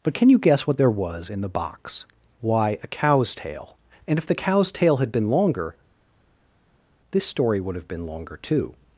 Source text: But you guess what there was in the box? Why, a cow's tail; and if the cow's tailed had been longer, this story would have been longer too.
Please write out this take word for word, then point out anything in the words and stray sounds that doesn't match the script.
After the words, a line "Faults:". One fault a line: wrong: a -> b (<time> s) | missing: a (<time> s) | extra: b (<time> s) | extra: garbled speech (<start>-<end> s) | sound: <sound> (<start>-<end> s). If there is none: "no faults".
But can you guess what there was in the box? Why, a cow's tail; and if the cow's tail had been longer, this story would have been longer too.
Faults:
extra: can (0.1 s)
wrong: tailed -> tail (4.7 s)